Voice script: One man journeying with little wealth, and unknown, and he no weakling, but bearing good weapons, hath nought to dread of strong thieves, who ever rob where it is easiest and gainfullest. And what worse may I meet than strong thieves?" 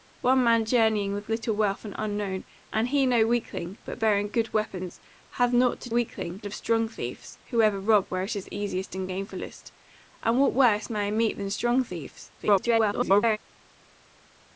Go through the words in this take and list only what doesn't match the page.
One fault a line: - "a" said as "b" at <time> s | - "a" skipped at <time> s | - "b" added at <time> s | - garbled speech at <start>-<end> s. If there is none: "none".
- "dread" said as "weakling" at 5.9 s
- garbled speech at 12.4-13.4 s